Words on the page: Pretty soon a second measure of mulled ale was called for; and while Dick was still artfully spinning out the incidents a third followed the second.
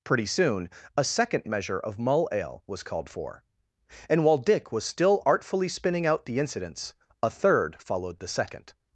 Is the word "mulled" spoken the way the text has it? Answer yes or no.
no